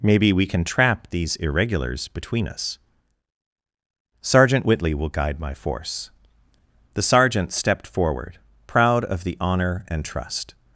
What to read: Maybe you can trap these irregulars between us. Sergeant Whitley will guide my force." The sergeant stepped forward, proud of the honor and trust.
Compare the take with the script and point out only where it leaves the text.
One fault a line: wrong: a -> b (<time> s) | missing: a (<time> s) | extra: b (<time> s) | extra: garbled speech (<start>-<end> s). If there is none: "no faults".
wrong: you -> we (0.3 s)